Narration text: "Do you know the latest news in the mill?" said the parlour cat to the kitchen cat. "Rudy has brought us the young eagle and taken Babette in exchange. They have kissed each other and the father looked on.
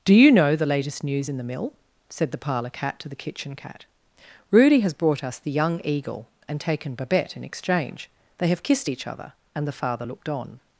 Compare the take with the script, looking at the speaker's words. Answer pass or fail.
pass